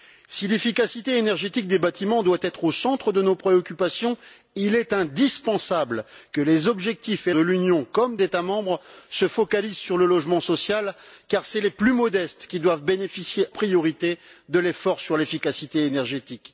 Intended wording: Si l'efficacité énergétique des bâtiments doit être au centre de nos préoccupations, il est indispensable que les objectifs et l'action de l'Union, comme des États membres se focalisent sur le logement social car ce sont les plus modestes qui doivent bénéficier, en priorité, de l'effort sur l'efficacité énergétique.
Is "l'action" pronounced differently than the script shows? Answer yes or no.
yes